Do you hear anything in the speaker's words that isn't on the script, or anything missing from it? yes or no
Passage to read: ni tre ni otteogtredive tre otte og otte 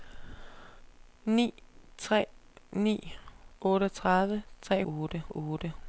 no